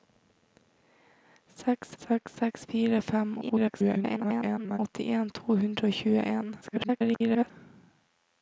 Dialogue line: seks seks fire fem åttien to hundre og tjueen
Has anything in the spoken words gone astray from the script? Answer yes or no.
yes